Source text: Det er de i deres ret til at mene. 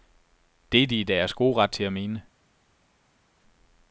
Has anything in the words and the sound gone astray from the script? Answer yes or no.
yes